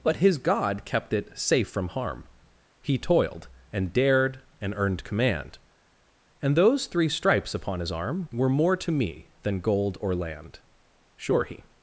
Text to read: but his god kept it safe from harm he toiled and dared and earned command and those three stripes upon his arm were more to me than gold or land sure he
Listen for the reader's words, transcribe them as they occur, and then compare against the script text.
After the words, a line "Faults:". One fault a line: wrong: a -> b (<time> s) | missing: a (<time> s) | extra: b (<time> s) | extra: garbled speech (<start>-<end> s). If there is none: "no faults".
but his god kept it safe from harm he toiled and dared and earned command and those three stripes upon his arm were more to me than gold or land sure he
Faults:
no faults